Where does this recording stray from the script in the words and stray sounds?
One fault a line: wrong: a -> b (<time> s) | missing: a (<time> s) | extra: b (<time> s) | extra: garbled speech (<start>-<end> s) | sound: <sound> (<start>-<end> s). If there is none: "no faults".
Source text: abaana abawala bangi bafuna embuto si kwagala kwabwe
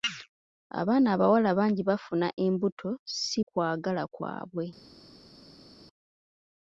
no faults